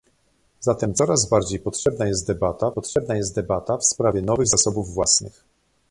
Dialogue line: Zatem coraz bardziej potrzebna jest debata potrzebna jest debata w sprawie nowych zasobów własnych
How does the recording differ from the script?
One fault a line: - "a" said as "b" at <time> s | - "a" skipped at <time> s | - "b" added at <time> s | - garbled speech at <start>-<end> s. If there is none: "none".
none